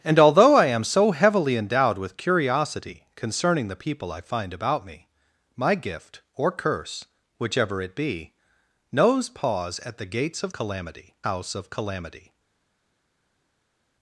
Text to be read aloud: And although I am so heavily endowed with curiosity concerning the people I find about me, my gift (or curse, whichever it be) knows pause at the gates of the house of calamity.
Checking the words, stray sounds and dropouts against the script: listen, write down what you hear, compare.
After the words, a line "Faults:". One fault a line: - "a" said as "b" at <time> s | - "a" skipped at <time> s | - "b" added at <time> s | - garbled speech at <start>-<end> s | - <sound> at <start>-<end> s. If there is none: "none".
And although I am so heavily endowed with curiosity concerning the people I find about me, my gift (or curse, whichever it be) knows pause at the gates of calamity house of calamity.
Faults:
- "the" said as "calamity" at 10.5 s